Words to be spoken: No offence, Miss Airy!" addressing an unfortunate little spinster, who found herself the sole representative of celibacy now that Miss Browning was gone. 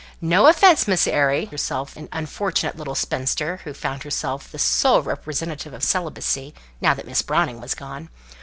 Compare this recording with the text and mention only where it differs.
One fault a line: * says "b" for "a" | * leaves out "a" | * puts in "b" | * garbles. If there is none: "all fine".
* says "herself" for "addressing"